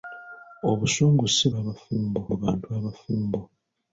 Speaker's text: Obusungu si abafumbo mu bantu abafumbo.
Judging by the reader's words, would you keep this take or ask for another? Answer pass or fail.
pass